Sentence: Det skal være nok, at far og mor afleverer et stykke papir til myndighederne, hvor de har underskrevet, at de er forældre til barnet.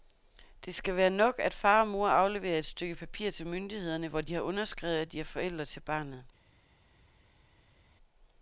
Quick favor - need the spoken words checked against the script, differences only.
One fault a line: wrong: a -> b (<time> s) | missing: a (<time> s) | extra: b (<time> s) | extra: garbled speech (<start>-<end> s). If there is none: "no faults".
no faults